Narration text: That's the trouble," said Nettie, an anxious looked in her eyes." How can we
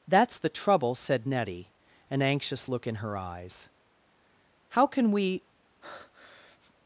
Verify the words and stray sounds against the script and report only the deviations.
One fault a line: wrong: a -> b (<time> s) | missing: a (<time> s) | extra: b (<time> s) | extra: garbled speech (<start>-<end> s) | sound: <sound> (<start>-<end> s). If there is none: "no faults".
wrong: looked -> look (2.7 s)
sound: breath (5.8-6.7 s)